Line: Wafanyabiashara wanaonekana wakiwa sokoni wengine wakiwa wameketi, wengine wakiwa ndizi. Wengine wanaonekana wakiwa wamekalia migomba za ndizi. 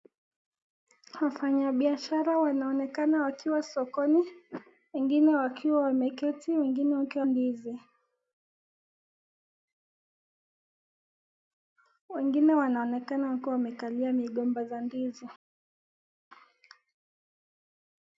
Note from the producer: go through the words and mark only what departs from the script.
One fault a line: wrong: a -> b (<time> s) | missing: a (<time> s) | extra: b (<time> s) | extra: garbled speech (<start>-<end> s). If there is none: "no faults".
no faults